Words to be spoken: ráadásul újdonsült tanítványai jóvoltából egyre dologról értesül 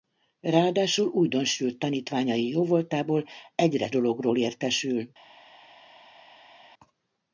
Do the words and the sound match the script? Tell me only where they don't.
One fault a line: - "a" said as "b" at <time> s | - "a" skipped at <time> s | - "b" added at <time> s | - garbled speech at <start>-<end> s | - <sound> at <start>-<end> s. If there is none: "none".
none